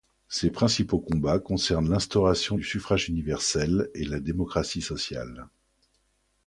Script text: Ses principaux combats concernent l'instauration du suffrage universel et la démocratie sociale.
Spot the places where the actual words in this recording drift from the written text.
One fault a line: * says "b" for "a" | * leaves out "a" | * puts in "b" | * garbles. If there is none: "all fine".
all fine